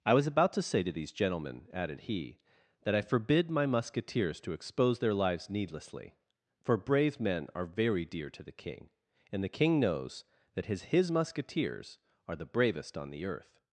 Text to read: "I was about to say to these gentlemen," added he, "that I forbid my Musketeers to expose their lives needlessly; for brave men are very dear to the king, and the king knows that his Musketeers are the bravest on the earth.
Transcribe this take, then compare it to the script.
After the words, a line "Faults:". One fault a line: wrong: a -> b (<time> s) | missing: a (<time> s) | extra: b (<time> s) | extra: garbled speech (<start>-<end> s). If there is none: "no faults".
"I was about to say to these gentlemen," added he, "that I forbid my Musketeers to expose their lives needlessly; for brave men are very dear to the king, and the king knows that his his Musketeers are the bravest on the earth.
Faults:
extra: his (10.8 s)